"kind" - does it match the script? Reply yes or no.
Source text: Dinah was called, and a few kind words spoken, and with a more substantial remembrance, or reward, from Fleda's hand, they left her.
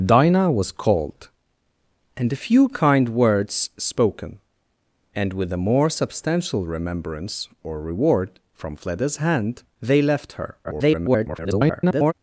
yes